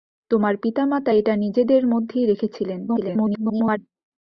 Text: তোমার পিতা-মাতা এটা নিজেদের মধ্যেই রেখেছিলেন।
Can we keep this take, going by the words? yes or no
no